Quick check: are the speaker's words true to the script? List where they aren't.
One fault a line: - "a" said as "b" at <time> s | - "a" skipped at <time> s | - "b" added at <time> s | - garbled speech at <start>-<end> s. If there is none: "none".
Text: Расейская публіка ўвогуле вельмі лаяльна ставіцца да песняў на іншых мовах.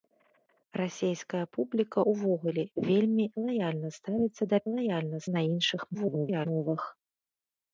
- "песняў" said as "лаяльна" at 4.7 s
- garbled speech at 5.9-6.5 s